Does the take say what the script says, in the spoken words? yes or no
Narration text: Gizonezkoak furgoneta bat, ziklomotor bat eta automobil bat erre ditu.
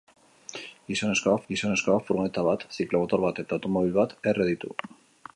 no